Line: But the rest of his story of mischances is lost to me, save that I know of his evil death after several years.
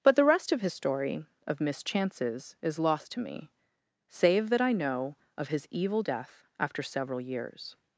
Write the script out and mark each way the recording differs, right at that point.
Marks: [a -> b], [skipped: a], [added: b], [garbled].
But the rest of his story of mischances is lost to me, save that I know of his evil death after several years.